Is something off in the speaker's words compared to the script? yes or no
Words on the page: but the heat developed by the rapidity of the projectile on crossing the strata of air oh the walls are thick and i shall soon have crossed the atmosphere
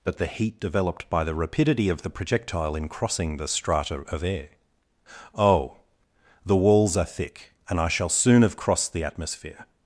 yes